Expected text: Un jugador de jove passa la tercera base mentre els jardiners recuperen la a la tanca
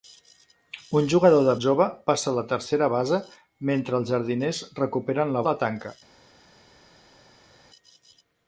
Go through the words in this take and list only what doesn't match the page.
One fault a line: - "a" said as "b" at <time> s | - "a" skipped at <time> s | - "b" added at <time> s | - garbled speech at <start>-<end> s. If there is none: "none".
none